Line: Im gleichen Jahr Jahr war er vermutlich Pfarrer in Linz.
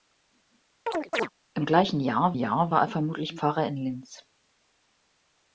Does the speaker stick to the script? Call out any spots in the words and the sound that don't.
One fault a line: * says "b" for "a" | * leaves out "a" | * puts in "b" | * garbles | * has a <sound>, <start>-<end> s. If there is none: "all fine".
* has a chirp, 0.9-1.3 s